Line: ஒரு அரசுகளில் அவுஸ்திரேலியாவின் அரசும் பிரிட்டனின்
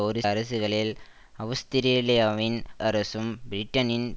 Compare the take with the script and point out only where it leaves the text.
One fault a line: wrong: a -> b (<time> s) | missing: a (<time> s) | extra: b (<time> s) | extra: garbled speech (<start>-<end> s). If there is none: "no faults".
no faults